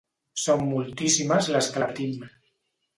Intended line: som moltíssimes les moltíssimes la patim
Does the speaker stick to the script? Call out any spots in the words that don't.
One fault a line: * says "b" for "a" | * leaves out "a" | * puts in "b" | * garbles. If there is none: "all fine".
* says "que" for "moltíssimes"